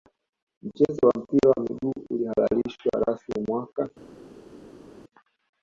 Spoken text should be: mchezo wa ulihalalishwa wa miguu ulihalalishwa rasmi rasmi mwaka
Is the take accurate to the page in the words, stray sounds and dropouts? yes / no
no